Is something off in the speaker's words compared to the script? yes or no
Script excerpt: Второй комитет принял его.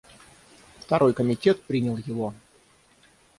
no